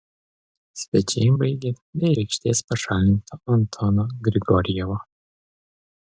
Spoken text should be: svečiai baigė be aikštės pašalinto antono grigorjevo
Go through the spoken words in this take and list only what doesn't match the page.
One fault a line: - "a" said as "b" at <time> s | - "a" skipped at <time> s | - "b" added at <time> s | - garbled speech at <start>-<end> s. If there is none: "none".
none